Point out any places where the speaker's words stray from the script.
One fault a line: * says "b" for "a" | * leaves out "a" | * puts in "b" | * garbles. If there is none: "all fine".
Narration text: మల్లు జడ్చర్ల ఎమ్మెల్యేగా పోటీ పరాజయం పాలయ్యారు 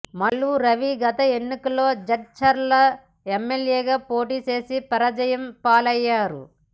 * puts in "రవి గత ఎన్నికల్లో"
* puts in "చేసి"